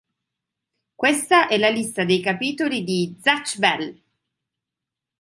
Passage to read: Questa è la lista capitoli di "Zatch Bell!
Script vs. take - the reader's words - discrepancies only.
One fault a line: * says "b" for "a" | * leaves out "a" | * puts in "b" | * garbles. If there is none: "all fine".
* puts in "dei"